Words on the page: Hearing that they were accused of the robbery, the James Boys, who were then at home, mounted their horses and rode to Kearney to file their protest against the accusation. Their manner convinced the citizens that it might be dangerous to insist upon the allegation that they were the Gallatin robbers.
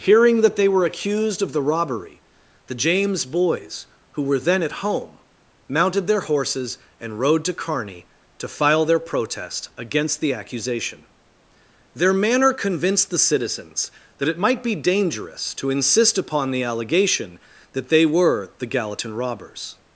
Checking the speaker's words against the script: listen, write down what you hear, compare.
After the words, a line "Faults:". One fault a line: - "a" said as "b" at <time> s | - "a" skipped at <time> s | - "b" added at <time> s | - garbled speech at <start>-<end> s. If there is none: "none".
Hearing that they were accused of the robbery, the James Boys, who were then at home, mounted their horses and rode to Kearney to file their protest against the accusation. Their manner convinced the citizens that it might be dangerous to insist upon the allegation that they were the Gallatin robbers.
Faults:
none